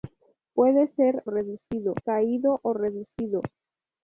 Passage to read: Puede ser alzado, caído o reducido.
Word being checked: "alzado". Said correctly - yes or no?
no